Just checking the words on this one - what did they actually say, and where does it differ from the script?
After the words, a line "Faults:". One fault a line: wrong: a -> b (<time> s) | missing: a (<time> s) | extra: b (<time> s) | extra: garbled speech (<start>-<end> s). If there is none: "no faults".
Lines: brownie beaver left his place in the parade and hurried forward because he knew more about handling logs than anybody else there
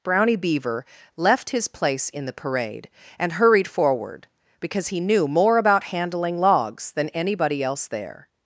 brownie beaver left his place in the parade and hurried forward because he knew more about handling logs than anybody else there
Faults:
no faults